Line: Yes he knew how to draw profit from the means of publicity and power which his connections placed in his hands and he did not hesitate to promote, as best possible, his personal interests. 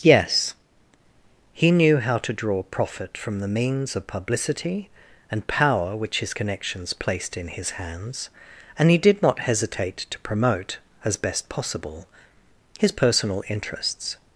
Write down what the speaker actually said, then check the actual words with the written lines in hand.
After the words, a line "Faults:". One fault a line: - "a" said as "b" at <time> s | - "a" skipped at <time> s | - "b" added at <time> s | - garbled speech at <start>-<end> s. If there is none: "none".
Yes he knew how to draw profit from the means of publicity and power which his connections placed in his hands and he did not hesitate to promote, as best possible, his personal interests.
Faults:
none